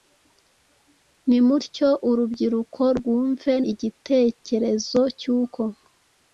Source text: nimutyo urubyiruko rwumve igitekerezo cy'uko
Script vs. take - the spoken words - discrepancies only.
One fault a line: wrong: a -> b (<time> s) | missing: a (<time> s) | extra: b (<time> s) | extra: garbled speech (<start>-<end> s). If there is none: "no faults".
no faults